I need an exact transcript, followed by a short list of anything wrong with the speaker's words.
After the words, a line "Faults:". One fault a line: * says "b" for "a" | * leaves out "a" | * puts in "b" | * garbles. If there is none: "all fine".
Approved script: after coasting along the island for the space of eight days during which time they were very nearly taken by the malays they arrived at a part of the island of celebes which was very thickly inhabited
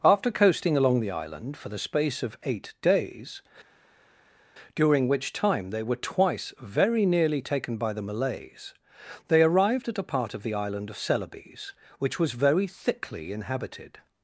after coasting along the island for the space of eight days during which time they were twice very nearly taken by the malays they arrived at a part of the island of celebes which was very thickly inhabited
Faults:
* puts in "twice"